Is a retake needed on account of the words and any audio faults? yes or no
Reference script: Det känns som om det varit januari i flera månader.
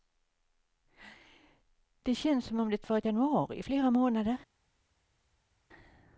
no